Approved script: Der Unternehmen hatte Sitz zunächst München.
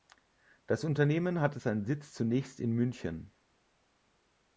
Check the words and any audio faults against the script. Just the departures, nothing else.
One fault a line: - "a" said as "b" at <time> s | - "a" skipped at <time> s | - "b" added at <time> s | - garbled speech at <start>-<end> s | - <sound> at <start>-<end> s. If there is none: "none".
- "Der" said as "Das" at 0.7 s
- "seinen" added at 1.5 s
- "in" added at 2.6 s